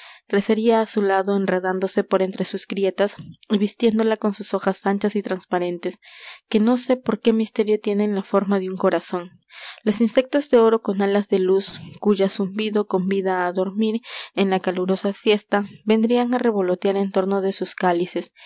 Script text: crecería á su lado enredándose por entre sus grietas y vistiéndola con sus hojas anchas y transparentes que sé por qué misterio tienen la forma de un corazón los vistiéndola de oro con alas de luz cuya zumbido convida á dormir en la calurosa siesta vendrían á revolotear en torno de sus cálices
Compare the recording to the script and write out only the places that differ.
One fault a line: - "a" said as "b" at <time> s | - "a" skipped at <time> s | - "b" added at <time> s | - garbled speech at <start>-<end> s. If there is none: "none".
- "no" added at 6.6 s
- "vistiéndola" said as "insectos" at 10.0 s